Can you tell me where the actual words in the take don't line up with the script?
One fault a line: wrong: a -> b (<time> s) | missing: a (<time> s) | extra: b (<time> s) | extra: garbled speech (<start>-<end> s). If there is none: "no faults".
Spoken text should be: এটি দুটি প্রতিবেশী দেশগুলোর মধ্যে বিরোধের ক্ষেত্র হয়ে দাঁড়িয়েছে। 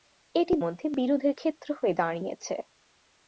missing: দুটি প্রতিবেশী দেশগুলোর (0.5 s)